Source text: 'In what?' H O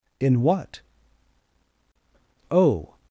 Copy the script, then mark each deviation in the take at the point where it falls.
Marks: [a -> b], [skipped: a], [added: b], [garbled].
'In what?' [skipped: H] O